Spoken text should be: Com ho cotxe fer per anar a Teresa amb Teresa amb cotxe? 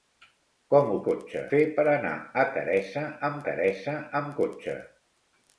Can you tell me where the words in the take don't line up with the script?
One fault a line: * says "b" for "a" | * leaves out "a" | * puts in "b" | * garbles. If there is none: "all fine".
all fine